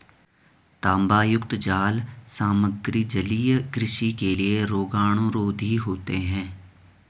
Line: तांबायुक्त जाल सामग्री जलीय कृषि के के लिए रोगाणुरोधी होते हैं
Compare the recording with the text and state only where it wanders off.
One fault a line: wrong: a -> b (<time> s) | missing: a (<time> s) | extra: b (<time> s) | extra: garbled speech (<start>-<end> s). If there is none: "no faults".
missing: के (4.3 s)